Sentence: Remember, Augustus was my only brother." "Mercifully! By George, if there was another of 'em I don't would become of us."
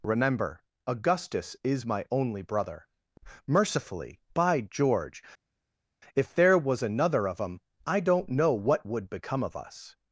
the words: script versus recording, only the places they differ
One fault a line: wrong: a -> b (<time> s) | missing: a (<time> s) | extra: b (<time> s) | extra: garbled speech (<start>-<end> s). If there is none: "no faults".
wrong: was -> is (1.6 s)
extra: know what (8.3 s)